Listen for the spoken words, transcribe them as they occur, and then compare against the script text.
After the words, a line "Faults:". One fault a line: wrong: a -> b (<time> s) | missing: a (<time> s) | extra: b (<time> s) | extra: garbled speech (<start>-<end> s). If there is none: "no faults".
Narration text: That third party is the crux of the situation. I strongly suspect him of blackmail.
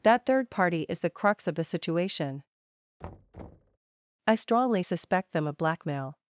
That third party is the crux of the situation. I strongly suspect them of blackmail.
Faults:
wrong: him -> them (5.3 s)